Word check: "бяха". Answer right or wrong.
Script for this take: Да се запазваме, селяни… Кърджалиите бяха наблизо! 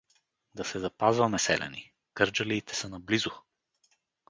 wrong